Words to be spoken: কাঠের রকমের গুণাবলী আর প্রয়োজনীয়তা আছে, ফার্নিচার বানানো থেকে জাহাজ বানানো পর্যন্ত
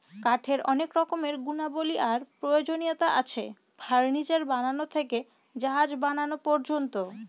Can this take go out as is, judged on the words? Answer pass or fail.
fail